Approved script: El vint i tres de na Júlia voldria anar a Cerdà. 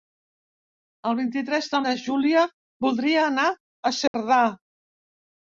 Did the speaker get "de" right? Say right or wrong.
right